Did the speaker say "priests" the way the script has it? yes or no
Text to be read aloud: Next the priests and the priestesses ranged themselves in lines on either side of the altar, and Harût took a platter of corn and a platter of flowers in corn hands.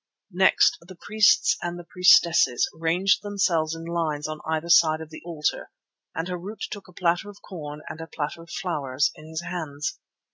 yes